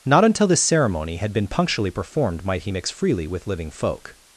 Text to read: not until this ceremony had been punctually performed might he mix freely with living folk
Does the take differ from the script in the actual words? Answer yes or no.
no